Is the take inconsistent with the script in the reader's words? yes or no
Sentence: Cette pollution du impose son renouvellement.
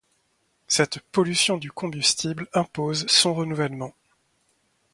yes